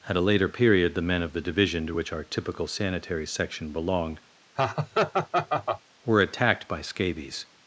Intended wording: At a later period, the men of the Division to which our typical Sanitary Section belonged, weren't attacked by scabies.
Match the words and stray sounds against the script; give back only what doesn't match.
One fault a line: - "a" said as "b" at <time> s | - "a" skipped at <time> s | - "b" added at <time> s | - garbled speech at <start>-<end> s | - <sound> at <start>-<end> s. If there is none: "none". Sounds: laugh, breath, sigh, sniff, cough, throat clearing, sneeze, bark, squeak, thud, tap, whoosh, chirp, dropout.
- laugh at 4.6-5.8 s
- "weren't" said as "were" at 6.0 s